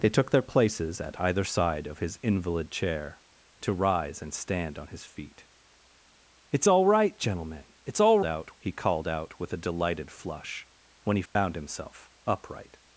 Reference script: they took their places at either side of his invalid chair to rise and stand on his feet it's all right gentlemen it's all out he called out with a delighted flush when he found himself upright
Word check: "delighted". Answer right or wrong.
right